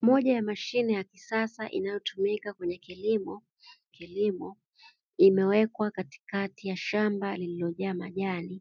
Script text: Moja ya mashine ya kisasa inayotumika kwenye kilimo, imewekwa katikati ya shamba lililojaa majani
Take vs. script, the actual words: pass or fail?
fail